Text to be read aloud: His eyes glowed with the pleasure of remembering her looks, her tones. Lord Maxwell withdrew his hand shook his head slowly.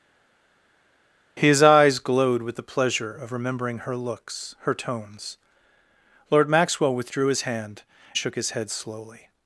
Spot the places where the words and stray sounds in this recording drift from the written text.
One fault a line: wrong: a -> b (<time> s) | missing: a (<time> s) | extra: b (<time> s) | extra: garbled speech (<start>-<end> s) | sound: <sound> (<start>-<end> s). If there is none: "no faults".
no faults